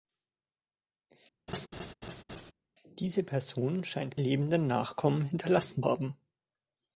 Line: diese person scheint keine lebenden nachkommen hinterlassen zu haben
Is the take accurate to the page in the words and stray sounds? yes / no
no